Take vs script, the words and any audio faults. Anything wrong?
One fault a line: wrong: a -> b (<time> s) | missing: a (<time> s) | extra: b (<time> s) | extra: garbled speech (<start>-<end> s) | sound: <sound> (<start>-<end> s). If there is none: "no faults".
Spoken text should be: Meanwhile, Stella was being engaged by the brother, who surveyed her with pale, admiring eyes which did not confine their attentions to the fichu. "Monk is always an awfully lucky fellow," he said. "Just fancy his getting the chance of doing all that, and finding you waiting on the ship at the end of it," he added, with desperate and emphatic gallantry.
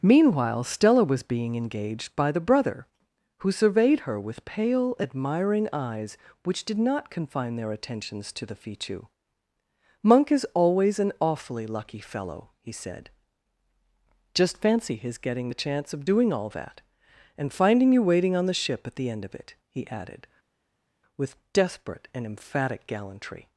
no faults